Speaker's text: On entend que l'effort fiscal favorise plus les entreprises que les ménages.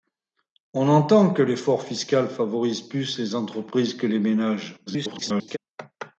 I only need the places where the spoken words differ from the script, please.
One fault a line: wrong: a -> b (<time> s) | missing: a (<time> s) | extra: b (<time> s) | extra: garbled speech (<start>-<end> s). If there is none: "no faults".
extra: garbled speech (4.9-5.6 s)